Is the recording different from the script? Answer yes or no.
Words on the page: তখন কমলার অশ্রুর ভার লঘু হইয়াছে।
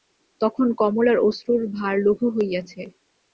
no